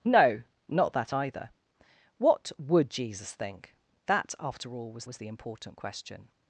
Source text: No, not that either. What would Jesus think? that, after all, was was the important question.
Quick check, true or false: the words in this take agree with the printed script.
true